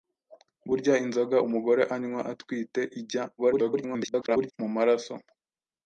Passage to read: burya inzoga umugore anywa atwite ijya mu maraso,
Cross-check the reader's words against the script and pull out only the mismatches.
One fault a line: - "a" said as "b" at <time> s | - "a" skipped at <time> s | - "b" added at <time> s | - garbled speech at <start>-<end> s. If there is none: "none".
- garbled speech at 3.4-4.5 s